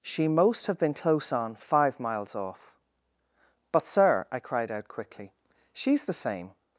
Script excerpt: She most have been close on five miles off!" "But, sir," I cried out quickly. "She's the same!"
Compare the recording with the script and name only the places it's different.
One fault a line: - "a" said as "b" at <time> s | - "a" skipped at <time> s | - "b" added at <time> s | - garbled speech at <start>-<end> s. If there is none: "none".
none